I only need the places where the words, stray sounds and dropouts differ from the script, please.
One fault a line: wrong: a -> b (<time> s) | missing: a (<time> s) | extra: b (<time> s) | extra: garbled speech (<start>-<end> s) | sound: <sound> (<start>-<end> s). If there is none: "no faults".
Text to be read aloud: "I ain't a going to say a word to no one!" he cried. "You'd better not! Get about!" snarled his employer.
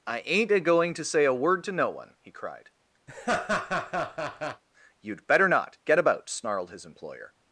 sound: laugh (3.1-4.6 s)